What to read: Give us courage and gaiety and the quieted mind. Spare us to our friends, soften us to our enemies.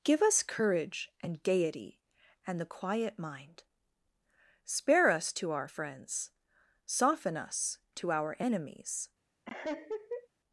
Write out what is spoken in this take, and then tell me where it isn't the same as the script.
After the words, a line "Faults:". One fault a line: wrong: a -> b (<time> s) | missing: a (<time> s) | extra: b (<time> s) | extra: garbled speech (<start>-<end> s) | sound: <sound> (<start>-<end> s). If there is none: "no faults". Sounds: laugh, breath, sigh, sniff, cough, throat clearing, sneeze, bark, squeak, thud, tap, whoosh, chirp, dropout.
Give us courage and gaiety and the quiet mind. Spare us to our friends, soften us to our enemies.
Faults:
wrong: quieted -> quiet (2.6 s)
sound: laugh (9.5-10.3 s)